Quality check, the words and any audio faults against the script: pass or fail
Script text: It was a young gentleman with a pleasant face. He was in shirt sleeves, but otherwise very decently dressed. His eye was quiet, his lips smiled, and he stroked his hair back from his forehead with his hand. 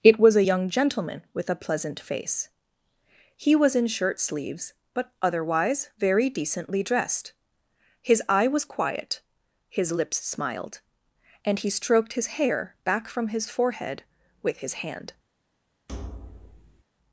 fail